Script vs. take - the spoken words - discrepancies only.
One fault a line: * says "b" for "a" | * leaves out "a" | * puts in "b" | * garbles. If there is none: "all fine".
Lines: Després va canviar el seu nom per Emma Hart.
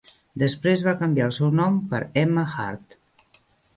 all fine